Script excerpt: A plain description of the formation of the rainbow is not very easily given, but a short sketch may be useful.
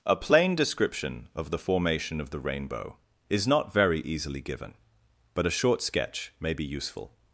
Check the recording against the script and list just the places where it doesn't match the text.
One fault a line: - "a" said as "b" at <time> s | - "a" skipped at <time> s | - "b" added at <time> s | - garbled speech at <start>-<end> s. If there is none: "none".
none